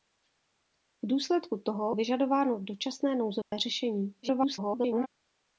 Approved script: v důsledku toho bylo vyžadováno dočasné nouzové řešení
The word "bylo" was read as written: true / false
false